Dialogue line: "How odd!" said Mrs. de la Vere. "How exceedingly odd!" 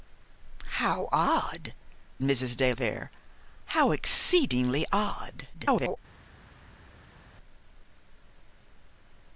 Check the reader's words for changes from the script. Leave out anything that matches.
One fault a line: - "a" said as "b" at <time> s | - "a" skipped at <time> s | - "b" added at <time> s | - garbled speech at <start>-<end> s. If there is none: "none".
- "said" skipped at 1.8 s
- "la" skipped at 2.7 s
- garbled speech at 5.5-6.0 s